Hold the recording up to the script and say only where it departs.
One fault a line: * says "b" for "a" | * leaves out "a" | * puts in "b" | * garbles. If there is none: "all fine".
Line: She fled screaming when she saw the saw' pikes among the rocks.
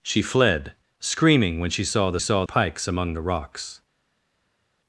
all fine